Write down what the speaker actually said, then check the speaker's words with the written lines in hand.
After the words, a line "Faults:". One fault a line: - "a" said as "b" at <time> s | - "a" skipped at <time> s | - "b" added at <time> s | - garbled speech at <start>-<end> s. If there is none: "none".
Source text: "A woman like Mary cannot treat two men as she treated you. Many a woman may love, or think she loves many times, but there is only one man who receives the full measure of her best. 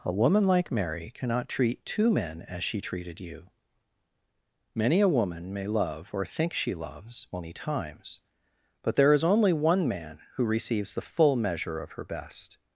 "A woman like Mary cannot treat two men as she treated you. Many a woman may love, or think she loves many times, but there is only one man who receives the full measure of her best.
Faults:
none